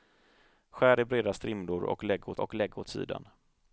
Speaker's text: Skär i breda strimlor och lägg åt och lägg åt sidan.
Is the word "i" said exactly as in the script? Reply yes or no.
yes